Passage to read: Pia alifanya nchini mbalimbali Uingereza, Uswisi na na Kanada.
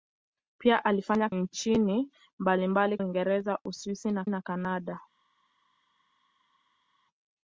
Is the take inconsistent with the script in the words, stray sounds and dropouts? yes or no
no